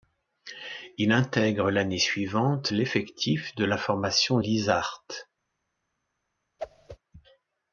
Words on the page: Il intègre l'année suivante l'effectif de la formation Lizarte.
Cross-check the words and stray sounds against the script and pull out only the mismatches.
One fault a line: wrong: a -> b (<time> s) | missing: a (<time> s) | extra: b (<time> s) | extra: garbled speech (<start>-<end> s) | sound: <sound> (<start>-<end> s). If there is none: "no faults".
sound: whoosh (6.6-7.0 s)